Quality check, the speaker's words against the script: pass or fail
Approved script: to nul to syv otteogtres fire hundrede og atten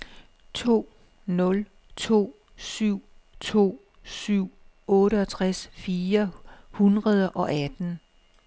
fail